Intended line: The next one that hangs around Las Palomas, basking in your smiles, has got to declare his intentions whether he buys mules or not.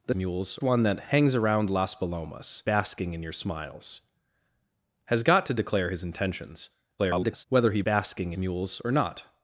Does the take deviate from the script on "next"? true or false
true